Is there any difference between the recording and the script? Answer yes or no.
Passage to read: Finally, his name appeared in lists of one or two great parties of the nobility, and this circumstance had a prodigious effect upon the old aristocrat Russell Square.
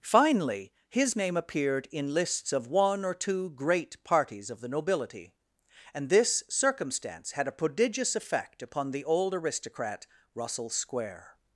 no